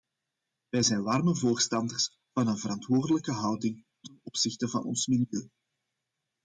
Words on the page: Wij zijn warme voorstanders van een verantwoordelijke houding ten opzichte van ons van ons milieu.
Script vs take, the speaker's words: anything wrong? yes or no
yes